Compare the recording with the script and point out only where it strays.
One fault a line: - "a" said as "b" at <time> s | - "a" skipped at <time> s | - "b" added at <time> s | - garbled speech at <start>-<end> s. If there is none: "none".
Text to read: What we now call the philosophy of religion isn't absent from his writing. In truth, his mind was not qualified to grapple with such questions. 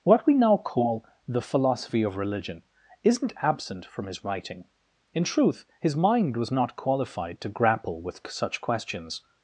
none